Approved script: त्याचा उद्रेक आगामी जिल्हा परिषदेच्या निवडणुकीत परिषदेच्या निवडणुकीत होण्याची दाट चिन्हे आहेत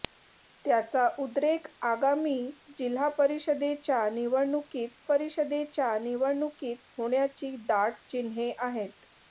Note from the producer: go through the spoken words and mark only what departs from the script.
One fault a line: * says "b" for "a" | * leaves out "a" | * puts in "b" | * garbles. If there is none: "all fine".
all fine